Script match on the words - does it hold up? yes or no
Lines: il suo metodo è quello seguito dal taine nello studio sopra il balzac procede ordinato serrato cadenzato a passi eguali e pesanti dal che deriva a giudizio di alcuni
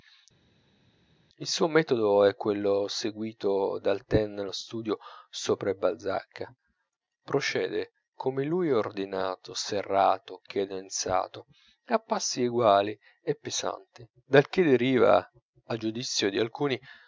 no